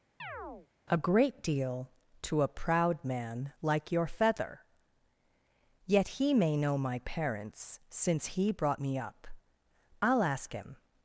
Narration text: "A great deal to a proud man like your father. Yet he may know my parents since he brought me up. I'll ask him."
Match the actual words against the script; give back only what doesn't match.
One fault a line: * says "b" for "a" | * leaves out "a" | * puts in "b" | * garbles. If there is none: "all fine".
* says "feather" for "father"